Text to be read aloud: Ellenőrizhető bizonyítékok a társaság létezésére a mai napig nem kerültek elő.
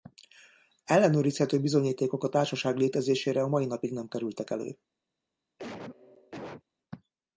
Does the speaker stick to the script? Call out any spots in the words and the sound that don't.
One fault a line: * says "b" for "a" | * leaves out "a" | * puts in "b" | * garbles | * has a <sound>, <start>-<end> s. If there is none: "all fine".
* has a cough, 5.6-6.6 s